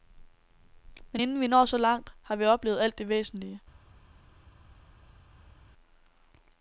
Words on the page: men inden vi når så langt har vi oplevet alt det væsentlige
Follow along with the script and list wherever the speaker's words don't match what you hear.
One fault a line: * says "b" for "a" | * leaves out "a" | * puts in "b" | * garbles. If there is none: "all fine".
all fine